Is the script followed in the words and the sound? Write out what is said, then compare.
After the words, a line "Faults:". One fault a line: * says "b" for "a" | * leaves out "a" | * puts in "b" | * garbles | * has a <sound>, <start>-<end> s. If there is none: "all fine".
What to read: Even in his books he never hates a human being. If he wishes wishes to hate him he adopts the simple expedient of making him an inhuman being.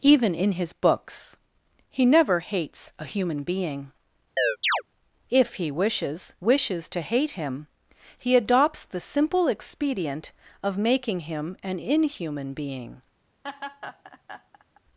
Even in his books he never hates a human being. If he wishes wishes to hate him he adopts the simple expedient of making him an inhuman being.
Faults:
* has a chirp, 4.4-4.8 s
* has a laugh, 13.4-14.8 s